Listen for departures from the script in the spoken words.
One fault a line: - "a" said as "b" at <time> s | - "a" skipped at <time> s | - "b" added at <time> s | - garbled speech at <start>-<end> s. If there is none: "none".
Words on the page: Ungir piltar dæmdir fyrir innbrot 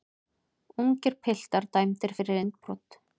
none